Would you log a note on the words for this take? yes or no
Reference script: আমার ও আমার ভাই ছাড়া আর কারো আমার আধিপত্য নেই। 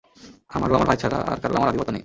no